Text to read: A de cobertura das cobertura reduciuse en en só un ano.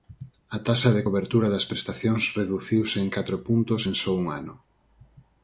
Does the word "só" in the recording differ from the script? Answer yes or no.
no